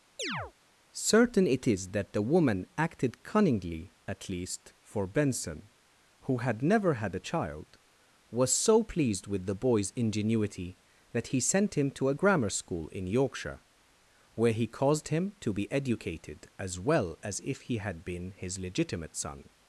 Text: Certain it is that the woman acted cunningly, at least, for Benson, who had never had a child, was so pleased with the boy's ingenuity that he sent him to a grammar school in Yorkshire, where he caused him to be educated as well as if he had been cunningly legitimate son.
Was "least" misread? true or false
false